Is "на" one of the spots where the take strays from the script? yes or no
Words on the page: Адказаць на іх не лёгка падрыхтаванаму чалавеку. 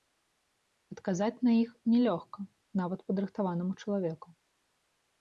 no